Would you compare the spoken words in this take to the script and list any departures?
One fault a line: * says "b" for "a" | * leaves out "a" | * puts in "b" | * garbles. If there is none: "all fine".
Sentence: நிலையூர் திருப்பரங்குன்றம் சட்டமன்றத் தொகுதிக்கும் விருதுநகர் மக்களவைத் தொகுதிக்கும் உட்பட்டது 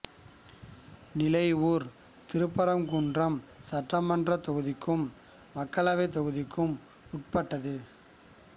* leaves out "விருதுநகர்"